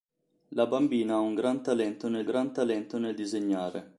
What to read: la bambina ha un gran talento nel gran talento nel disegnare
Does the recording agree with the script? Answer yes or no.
yes